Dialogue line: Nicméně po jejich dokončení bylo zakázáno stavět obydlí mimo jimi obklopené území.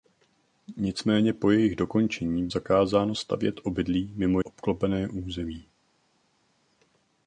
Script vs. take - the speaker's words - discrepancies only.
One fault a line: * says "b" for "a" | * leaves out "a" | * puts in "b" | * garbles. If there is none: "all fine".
* leaves out "bylo"
* leaves out "jimi"